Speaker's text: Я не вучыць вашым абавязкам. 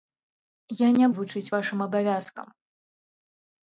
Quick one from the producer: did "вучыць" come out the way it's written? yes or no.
yes